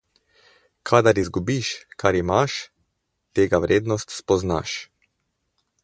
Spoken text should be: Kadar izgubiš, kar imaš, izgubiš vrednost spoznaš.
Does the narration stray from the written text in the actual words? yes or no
yes